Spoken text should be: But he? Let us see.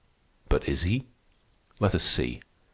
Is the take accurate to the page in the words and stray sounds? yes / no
no